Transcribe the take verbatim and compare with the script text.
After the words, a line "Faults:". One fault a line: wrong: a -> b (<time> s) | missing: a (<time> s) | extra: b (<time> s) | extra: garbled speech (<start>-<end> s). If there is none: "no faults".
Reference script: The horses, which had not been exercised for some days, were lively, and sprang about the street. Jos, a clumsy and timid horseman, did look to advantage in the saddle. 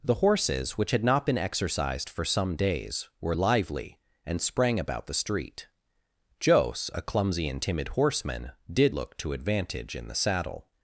The horses, which had not been exercised for some days, were lively, and sprang about the street. Jos, a clumsy and timid horseman, did look to advantage in the saddle.
Faults:
no faults